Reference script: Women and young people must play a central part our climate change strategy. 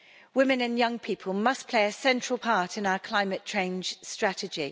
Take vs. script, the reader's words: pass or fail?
fail